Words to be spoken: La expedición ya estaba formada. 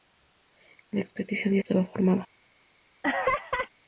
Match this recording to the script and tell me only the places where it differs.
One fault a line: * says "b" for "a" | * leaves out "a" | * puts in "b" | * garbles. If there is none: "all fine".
all fine